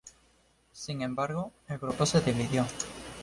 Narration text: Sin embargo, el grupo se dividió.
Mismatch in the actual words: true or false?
false